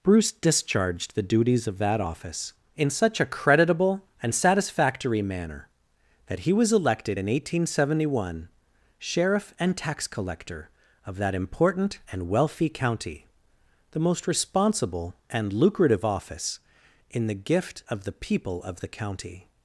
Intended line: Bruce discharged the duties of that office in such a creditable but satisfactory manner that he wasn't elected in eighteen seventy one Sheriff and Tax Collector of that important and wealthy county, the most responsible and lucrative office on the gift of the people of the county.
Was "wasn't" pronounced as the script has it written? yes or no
no